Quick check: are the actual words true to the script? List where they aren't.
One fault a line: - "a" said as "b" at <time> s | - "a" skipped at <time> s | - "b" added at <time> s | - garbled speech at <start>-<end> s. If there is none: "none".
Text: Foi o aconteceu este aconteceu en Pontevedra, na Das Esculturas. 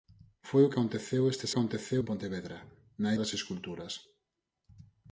none